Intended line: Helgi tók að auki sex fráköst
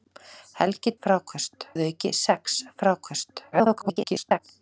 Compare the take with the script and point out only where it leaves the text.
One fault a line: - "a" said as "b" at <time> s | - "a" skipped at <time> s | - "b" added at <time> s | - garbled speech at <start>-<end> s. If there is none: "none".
- "tók" said as "fráköst" at 1.0 s
- garbled speech at 3.5-4.4 s